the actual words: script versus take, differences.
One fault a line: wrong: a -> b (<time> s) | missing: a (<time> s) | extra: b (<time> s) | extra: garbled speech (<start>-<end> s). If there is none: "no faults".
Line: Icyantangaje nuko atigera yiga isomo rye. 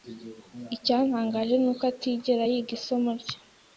no faults